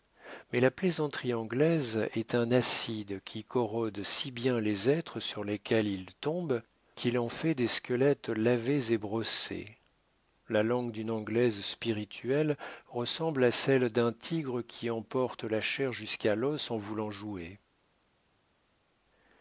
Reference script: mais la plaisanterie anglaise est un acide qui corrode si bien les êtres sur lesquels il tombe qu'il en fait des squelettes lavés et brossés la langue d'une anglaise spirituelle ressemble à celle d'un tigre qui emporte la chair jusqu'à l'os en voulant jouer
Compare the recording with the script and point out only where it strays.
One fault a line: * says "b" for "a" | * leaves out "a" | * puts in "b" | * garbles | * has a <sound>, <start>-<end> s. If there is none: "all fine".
all fine